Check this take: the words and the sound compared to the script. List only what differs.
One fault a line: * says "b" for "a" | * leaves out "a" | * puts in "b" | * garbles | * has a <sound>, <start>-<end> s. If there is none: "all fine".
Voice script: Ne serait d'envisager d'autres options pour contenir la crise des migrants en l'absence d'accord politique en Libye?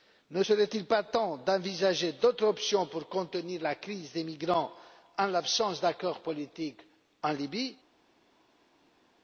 * puts in "il pas temps"